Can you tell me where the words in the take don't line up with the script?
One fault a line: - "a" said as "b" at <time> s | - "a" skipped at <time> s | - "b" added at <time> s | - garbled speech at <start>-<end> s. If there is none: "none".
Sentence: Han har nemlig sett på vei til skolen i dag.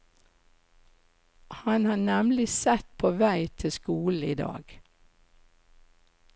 none